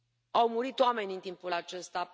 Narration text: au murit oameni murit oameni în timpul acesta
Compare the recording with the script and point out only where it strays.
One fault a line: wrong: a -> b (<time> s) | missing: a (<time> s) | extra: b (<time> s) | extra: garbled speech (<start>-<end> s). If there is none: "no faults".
missing: murit oameni (1.1 s)